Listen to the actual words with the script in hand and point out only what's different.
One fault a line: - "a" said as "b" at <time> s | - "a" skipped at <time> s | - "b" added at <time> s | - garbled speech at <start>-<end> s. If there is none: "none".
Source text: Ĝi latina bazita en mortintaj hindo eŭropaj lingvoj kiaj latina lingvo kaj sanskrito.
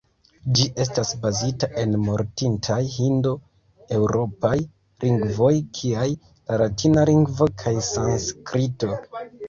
- "latina" said as "estas" at 0.8 s
- "la" added at 6.1 s